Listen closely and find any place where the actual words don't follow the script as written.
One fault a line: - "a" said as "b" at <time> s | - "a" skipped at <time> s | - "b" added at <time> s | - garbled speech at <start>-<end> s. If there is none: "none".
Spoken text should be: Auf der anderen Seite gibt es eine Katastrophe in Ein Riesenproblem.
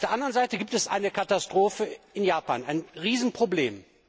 - "Japan" added at 2.2 s